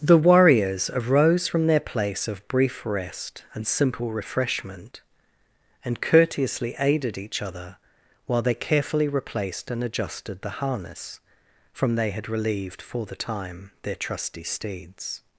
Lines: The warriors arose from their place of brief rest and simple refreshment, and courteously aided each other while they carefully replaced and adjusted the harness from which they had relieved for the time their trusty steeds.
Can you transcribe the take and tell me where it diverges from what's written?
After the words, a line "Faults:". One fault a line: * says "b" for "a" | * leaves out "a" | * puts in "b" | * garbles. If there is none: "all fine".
The warriors arose from their place of brief rest and simple refreshment, and courteously aided each other while they carefully replaced and adjusted the harness from they had relieved for the time their trusty steeds.
Faults:
* leaves out "which"